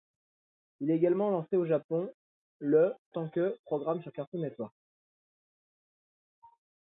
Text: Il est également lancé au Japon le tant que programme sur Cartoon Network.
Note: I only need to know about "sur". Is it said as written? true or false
true